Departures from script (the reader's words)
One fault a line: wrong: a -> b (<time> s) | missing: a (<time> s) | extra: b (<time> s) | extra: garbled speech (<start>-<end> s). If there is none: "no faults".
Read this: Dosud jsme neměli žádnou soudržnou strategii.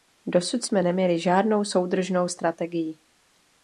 no faults